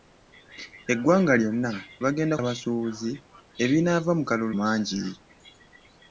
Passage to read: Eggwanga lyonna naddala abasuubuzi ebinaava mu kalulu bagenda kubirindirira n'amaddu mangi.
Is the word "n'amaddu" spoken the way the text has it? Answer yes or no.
no